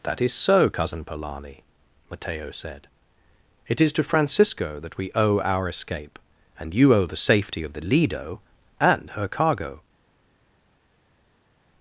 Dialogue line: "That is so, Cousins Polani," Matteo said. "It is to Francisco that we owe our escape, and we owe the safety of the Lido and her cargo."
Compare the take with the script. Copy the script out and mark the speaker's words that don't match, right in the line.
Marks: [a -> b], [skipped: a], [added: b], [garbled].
"That is so, [Cousins -> Cousin] Polani," Matteo said. "It is to Francisco that we owe our escape, and [we -> you] owe the safety of the Lido and her cargo."